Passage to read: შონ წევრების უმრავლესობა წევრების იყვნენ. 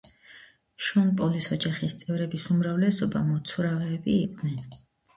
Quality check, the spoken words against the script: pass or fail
fail